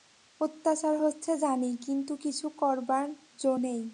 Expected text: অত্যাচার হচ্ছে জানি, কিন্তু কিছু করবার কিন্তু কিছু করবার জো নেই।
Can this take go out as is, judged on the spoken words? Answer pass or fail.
fail